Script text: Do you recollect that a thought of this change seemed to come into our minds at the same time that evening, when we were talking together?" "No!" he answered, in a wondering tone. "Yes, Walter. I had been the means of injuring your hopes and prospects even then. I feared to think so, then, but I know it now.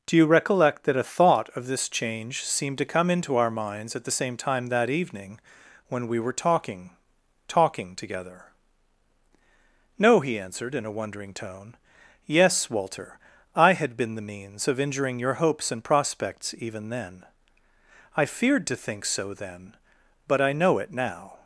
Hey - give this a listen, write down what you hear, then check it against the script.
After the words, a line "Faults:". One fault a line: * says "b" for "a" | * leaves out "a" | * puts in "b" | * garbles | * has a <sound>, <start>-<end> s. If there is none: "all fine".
Do you recollect that a thought of this change seemed to come into our minds at the same time that evening, when we were talking talking together?" "No!" he answered, in a wondering tone. "Yes, Walter. I had been the means of injuring your hopes and prospects even then. I feared to think so, then, but I know it now.
Faults:
* puts in "talking"